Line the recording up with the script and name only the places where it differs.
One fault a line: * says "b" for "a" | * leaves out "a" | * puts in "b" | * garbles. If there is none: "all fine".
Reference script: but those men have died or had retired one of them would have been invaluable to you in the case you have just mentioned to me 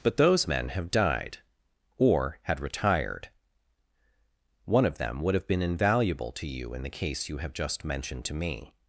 all fine